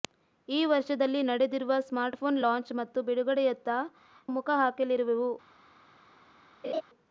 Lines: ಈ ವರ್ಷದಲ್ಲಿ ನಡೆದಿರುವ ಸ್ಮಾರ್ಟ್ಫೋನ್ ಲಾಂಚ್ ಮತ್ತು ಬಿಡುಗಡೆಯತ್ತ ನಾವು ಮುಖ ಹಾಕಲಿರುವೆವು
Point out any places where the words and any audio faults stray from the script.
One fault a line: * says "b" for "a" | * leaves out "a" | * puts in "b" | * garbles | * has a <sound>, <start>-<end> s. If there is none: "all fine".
* leaves out "ನಾವು"
* has a laugh, 6.6-6.8 s